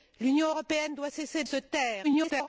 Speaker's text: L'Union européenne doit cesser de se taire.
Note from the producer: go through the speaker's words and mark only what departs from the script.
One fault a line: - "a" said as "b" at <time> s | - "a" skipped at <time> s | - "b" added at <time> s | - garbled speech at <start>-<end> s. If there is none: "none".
- "de" skipped at 1.4 s
- garbled speech at 2.0-2.5 s